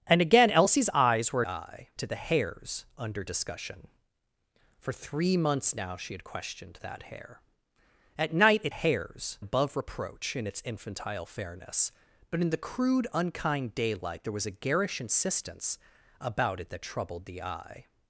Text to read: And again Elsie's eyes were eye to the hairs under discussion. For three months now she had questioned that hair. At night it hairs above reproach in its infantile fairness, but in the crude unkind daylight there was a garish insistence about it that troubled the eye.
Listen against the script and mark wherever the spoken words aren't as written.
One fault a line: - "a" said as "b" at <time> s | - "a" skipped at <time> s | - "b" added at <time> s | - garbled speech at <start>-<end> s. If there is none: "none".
none